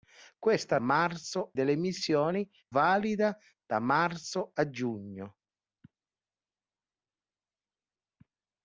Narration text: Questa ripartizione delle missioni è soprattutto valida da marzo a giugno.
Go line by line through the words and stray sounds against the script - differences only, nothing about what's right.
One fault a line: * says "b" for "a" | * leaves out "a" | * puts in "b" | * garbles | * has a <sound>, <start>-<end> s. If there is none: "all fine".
* says "marzo" for "ripartizione"
* leaves out "è soprattutto"